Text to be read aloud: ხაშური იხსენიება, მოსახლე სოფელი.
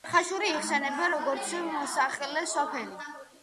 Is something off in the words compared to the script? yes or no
yes